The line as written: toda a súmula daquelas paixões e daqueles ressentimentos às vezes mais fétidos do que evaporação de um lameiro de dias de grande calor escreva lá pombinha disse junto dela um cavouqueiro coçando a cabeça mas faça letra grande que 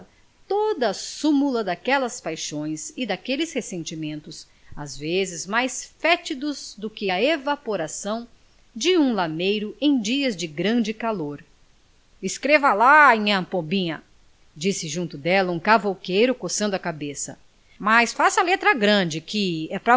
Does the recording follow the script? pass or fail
fail